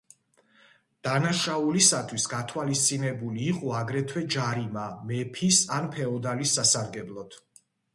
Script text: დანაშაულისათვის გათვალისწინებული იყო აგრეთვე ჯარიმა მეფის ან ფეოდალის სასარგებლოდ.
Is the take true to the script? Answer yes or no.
yes